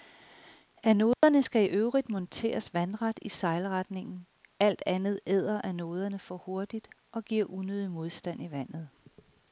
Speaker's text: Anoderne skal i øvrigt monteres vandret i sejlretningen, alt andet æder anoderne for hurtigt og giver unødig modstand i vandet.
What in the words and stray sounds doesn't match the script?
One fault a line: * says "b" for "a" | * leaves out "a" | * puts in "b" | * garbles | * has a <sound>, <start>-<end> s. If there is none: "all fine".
* has a dropout, 1.1-1.2 s